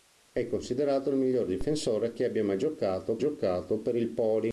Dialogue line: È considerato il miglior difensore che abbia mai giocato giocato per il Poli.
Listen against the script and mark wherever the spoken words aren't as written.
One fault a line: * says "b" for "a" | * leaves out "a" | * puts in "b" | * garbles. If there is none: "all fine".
all fine